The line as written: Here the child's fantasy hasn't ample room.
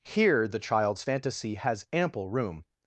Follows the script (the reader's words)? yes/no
no